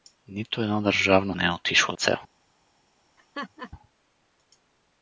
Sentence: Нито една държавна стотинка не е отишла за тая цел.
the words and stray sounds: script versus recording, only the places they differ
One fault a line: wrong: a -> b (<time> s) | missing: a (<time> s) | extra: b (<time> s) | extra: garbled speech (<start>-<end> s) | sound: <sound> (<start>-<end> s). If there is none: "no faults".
missing: стотинка (1.4 s)
missing: за тая (2.0 s)
sound: laugh (3.2-3.7 s)